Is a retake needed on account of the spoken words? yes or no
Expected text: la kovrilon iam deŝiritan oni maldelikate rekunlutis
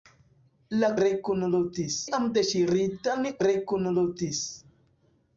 yes